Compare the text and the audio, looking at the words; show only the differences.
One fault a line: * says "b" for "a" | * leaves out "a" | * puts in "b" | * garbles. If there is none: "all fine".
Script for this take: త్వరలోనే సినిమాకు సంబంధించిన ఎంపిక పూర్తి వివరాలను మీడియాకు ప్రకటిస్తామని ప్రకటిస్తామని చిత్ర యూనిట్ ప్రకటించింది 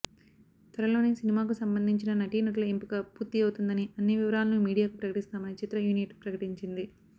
* puts in "నటీనటుల"
* puts in "అవుతుందని అన్ని"
* leaves out "ప్రకటిస్తామని"